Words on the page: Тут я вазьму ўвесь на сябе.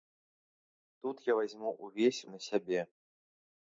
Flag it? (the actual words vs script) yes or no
no